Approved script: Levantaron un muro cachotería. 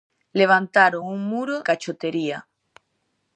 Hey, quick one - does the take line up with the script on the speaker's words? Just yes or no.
yes